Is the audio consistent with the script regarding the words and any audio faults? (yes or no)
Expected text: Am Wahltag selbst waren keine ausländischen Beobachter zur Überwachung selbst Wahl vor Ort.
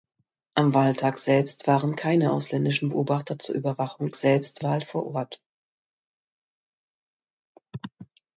yes